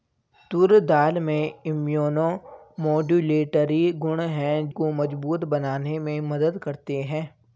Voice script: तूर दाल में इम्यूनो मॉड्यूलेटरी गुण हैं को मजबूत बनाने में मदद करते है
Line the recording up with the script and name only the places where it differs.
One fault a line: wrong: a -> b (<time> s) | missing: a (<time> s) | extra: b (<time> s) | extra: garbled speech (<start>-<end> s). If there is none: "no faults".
no faults